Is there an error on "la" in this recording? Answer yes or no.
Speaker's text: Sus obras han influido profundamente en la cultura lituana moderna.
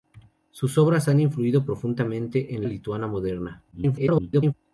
yes